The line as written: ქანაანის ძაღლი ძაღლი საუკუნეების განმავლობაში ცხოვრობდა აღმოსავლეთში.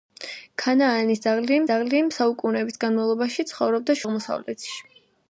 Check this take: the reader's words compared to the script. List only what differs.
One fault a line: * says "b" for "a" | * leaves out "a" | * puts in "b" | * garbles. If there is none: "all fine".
all fine